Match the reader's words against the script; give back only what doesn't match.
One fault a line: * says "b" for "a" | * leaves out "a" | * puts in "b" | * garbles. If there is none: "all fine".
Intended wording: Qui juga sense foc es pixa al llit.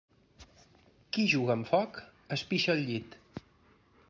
* says "amb" for "sense"